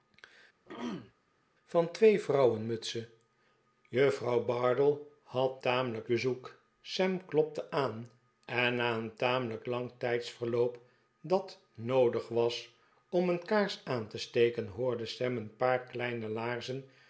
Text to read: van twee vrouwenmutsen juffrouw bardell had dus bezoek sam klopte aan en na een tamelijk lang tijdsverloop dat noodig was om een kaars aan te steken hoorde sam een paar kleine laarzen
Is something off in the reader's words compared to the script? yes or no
yes